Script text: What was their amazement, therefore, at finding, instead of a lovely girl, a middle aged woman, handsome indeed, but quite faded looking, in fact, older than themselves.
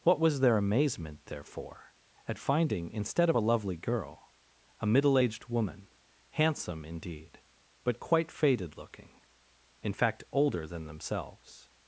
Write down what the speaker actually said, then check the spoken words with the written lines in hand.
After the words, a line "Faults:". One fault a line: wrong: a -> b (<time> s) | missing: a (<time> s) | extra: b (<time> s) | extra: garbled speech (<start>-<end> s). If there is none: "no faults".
What was their amazement, therefore, at finding, instead of a lovely girl, a middle aged woman, handsome indeed, but quite faded looking, in fact, older than themselves.
Faults:
no faults